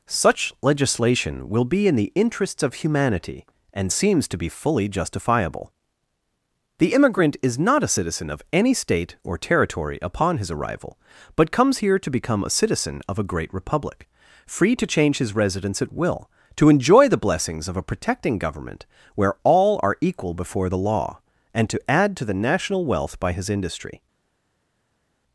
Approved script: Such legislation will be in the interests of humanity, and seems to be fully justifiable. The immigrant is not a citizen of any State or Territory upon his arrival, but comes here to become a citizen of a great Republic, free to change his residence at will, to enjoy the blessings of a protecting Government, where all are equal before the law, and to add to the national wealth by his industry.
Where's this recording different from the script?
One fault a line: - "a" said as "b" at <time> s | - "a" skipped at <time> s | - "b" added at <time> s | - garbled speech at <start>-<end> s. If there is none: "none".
none